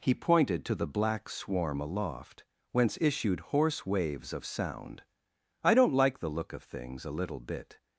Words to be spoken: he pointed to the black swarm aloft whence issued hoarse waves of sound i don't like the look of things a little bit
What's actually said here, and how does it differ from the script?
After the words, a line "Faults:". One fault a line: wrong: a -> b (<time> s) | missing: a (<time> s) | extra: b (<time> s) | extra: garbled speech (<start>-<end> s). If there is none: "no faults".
he pointed to the black swarm aloft whence issued hoarse waves of sound i don't like the look of things a little bit
Faults:
no faults